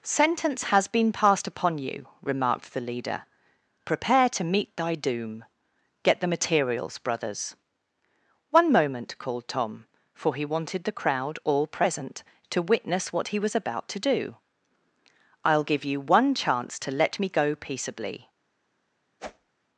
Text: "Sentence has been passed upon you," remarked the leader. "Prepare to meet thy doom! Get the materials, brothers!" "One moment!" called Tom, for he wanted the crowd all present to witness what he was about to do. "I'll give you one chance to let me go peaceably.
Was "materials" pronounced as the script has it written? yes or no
yes